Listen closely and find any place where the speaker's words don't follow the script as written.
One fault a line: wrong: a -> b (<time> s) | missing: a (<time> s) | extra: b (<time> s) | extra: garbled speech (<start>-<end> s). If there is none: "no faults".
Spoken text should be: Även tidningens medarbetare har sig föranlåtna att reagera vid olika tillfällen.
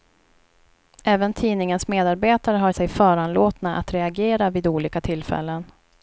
no faults